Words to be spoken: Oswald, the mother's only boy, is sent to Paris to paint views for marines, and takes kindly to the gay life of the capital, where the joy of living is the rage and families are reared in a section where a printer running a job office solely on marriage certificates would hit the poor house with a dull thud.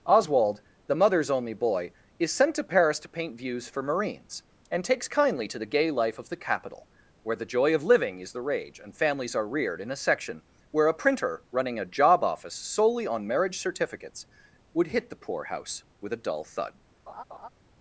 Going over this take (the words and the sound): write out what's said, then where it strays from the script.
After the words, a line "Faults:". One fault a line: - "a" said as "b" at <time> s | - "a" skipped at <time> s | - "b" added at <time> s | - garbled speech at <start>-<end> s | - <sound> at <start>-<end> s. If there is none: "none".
Oswald, the mother's only boy, is sent to Paris to paint views for marines, and takes kindly to the gay life of the capital, where the joy of living is the rage and families are reared in a section where a printer running a job office solely on marriage certificates would hit the poor house with a dull thud.
Faults:
- laugh at 17.1-17.5 s